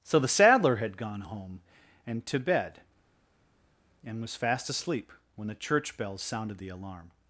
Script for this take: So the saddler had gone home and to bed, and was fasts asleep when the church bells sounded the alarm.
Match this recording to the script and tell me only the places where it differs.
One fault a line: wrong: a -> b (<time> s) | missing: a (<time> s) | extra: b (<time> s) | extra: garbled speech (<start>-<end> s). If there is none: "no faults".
wrong: fasts -> fast (4.3 s)